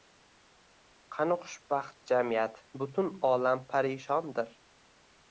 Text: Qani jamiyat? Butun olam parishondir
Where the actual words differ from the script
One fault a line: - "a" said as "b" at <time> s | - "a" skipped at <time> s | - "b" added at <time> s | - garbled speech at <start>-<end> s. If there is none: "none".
- "xushbaxt" added at 1.4 s